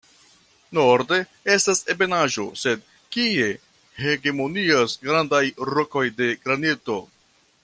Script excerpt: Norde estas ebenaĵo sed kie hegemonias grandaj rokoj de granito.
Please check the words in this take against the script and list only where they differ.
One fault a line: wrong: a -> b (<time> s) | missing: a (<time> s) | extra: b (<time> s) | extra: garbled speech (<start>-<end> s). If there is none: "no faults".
no faults